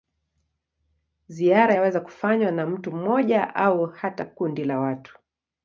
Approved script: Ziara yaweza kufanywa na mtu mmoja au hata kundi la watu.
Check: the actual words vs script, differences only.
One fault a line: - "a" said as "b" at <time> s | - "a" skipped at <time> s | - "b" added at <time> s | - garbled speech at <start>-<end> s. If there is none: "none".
none